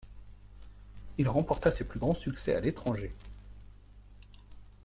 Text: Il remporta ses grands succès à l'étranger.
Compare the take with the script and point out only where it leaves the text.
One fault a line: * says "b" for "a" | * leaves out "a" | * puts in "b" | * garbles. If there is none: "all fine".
* puts in "plus"